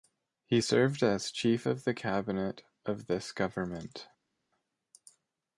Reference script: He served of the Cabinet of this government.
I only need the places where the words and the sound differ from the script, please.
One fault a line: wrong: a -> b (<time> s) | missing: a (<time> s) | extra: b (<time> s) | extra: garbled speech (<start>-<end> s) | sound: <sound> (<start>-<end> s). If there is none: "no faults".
extra: as Chief (1.0 s)